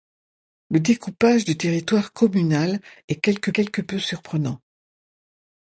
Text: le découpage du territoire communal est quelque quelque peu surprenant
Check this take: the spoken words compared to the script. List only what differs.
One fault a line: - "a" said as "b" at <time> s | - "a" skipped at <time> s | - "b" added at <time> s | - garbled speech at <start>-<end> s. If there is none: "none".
none